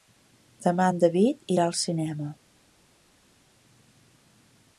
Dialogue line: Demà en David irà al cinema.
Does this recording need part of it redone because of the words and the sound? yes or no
no